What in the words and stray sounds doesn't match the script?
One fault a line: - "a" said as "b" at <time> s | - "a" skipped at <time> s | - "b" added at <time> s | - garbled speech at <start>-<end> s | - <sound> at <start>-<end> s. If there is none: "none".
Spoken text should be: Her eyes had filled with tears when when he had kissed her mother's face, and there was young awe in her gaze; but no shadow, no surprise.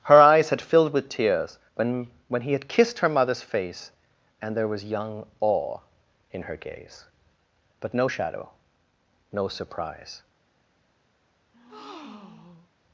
- breath at 11.5-12.7 s